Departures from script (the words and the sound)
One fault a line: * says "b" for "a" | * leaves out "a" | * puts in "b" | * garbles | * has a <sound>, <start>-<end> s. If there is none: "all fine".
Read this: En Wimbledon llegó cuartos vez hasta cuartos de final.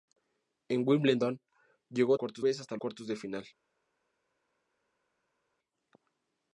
all fine